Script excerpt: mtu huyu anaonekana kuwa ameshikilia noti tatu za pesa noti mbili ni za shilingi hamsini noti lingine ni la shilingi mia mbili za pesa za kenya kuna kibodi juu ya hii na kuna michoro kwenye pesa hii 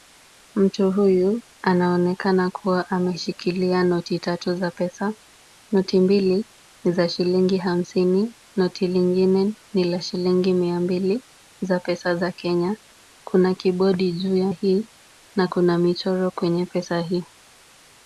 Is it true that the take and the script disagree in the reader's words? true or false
false